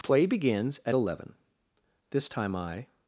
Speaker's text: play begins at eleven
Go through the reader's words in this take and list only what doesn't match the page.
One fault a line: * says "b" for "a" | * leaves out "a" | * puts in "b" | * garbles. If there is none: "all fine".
* puts in "this time i"